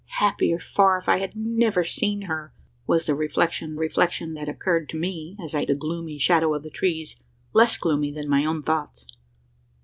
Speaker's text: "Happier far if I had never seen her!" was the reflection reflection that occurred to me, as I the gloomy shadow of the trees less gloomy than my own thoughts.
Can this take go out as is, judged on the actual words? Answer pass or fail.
pass